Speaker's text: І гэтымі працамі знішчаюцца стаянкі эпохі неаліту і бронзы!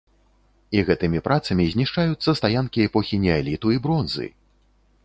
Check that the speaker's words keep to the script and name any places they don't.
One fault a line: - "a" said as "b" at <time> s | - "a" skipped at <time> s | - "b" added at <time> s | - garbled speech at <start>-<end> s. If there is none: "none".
none